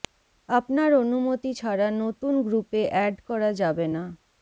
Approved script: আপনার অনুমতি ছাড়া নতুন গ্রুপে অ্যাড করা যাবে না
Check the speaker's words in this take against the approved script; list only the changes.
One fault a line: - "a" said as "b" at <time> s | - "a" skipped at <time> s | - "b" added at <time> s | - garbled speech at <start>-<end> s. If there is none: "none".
none